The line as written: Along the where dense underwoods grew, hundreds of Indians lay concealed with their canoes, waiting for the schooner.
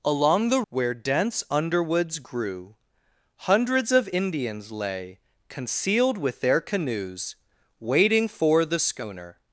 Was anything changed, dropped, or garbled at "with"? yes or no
no